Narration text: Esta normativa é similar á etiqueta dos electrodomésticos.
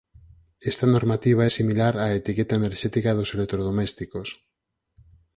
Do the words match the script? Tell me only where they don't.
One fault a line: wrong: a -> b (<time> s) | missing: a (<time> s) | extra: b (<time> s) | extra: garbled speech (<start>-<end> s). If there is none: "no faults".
extra: enerxética (2.6 s)